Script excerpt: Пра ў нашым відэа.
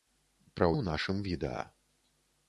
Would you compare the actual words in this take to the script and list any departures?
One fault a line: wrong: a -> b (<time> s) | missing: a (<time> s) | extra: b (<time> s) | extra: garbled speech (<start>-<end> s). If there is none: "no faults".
no faults